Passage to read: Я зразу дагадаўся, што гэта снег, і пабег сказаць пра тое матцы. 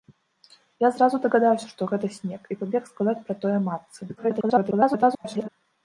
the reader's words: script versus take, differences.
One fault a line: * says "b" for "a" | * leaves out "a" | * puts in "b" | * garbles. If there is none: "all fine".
* garbles